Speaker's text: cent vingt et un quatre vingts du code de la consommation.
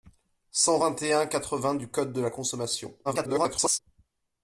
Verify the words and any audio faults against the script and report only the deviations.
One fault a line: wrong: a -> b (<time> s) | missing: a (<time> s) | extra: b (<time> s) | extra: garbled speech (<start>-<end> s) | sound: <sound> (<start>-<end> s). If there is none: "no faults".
extra: garbled speech (3.0-3.8 s)